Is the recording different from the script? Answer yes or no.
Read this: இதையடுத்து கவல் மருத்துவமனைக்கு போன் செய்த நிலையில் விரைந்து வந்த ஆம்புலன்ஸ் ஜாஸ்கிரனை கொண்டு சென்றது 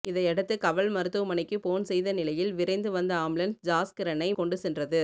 no